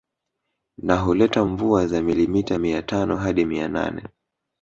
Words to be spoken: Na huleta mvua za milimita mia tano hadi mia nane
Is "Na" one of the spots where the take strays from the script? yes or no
no